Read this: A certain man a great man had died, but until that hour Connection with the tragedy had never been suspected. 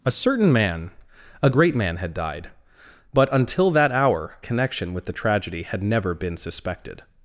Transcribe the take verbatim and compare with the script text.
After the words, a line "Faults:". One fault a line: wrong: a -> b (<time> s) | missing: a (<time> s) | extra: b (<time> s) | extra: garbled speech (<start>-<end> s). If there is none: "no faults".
A certain man a great man had died, but until that hour Connection with the tragedy had never been suspected.
Faults:
no faults